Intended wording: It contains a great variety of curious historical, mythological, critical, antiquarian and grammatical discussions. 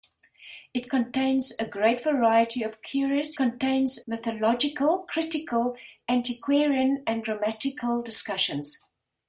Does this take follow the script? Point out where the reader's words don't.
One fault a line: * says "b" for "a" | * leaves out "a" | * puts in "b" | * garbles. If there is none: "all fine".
* says "contains" for "historical"